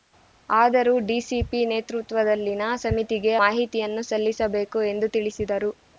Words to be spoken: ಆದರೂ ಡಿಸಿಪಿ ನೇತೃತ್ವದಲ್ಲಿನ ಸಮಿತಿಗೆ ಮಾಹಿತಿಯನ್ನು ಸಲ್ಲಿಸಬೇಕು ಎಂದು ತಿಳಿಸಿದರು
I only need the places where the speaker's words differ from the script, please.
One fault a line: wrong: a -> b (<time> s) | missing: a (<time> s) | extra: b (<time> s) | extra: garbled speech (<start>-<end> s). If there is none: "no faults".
no faults